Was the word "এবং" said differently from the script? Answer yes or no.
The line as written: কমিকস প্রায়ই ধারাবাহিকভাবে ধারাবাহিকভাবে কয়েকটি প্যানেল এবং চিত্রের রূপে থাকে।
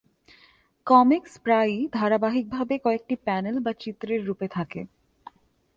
yes